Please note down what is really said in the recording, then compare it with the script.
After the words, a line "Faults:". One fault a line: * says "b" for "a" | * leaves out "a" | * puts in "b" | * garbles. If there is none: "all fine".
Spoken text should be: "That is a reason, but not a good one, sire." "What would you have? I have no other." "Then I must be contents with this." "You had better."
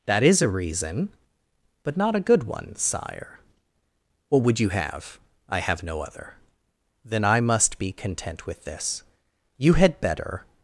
"That is a reason, but not a good one, sire." "What would you have? I have no other." "Then I must be content with this." "You had better."
Faults:
* says "content" for "contents"